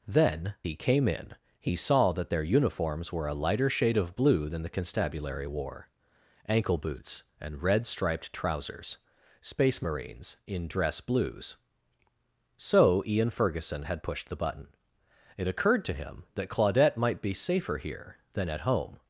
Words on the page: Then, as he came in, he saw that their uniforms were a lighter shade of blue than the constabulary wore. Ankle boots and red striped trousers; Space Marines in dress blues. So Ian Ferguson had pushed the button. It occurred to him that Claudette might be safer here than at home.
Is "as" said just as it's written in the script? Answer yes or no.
no